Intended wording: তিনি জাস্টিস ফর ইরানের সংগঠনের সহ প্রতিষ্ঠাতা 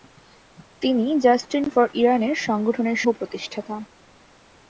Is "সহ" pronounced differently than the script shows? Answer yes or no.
yes